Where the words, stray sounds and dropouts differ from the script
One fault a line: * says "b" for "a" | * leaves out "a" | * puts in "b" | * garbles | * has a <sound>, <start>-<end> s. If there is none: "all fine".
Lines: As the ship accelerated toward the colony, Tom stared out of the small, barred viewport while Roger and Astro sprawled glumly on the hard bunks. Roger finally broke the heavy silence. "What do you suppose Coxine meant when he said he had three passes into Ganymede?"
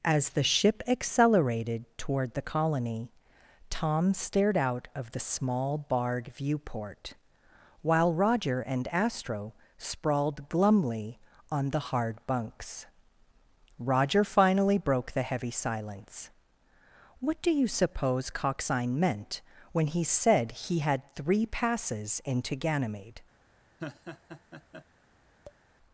* has a laugh, 23.8-24.8 s
* has a tap, 25.4-25.6 s